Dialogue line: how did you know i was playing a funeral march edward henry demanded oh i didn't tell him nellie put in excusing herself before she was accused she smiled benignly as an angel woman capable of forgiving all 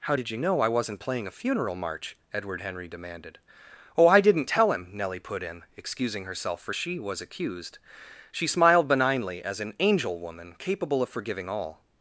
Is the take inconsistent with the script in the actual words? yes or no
yes